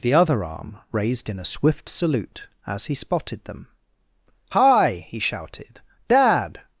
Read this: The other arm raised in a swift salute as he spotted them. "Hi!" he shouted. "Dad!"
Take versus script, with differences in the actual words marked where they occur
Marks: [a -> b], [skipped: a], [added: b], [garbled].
The other arm raised in a swift salute as he spotted them. "Hi!" he shouted. "Dad!"